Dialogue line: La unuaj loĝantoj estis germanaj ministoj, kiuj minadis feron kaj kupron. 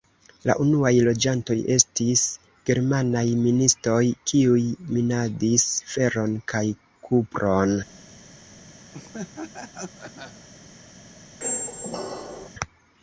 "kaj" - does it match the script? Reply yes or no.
yes